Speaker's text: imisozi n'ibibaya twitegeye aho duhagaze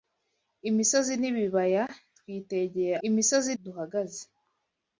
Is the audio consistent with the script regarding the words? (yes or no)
no